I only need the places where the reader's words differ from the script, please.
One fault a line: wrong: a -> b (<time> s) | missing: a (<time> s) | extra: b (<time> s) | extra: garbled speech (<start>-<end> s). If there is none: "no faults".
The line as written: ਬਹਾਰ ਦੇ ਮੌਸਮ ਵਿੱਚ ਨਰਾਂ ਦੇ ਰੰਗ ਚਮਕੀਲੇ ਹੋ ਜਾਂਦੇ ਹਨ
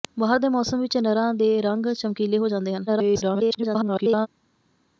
extra: garbled speech (2.9-4.3 s)